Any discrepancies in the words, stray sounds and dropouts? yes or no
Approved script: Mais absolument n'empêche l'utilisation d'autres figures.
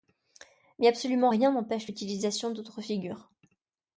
yes